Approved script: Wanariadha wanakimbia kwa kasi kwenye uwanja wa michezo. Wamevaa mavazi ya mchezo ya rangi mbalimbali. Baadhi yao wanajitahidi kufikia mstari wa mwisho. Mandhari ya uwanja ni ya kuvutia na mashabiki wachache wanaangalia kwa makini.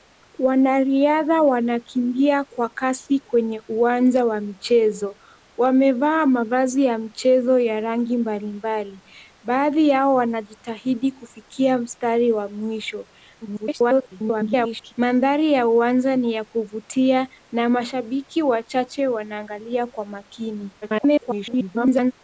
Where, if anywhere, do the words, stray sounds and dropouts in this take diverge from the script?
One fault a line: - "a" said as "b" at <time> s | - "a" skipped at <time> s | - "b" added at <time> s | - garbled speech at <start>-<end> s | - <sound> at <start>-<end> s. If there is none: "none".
- garbled speech at 13.4-14.9 s
- garbled speech at 20.8-22.1 s